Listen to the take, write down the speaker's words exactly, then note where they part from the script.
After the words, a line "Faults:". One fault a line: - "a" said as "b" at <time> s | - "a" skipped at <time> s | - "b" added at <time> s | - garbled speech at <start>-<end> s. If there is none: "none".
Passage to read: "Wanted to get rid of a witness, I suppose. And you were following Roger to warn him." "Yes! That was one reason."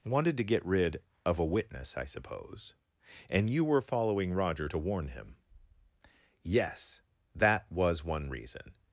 "Wanted to get rid of a witness, I suppose. And you were following Roger to warn him." "Yes! That was one reason."
Faults:
none